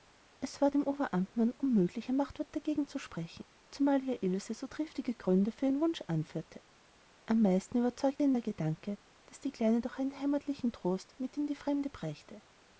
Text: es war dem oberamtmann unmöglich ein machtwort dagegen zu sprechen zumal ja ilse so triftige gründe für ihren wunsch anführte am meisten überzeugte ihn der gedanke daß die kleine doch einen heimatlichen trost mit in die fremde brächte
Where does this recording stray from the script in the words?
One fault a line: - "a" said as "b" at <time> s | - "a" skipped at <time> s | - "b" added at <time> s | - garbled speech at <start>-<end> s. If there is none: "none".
none